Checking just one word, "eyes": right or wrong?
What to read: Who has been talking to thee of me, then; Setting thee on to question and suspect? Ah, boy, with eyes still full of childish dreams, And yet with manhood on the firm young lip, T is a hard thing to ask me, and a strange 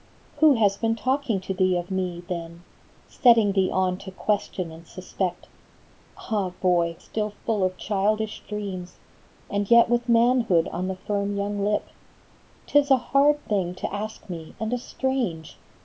wrong